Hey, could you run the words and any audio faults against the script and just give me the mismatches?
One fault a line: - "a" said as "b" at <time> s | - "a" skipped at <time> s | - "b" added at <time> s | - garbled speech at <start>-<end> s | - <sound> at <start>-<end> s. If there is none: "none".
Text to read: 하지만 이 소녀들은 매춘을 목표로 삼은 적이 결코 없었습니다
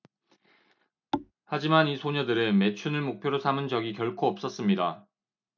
- thud at 1.1-1.3 s